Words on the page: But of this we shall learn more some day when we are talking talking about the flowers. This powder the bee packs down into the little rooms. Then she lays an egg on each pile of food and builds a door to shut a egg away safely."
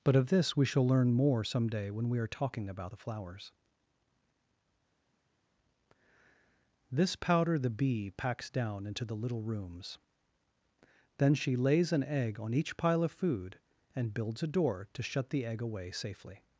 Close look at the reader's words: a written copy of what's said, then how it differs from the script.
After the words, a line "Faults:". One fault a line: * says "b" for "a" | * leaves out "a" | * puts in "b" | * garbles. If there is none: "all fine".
But of this we shall learn more some day when we are talking about the flowers. This powder the bee packs down into the little rooms. Then she lays an egg on each pile of food and builds a door to shut the egg away safely."
Faults:
* leaves out "talking"
* says "the" for "a"